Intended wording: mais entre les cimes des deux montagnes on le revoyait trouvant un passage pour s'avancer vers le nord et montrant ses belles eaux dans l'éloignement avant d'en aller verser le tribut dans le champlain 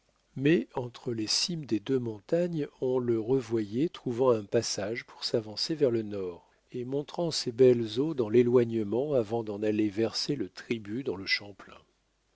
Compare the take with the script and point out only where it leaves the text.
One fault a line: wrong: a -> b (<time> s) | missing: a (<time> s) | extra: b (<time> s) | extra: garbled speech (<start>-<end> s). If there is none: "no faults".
no faults